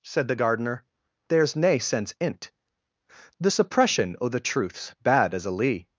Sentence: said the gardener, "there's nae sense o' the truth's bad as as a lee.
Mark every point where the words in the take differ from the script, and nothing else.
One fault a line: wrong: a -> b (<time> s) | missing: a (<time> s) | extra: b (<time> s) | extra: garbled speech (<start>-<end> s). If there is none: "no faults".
extra: in't The suppression (2.2 s)
missing: as (5.5 s)